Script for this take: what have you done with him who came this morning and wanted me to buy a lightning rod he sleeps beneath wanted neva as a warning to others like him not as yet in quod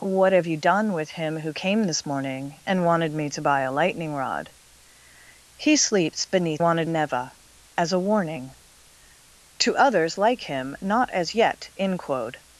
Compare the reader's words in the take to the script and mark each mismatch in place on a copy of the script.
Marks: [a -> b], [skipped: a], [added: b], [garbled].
what have you done with him who came this morning and wanted me to buy a lightning rod he sleeps beneath wanted neva as a warning to others like him not as yet in quod